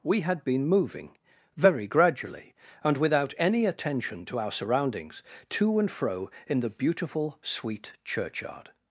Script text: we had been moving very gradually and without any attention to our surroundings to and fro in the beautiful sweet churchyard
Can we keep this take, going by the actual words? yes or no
yes